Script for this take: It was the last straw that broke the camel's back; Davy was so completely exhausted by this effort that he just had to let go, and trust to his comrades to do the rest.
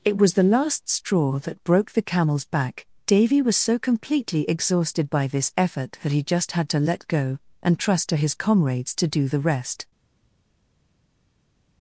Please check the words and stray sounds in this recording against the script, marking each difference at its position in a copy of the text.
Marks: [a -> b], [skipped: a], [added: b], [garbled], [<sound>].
It was the last straw that broke the camel's back; Davy was so completely exhausted by this effort that he just had to let go, and trust to his comrades to do the rest.